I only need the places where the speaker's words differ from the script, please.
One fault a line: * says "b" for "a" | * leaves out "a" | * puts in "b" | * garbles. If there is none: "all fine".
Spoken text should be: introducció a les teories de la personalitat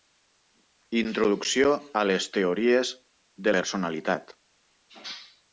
* leaves out "la"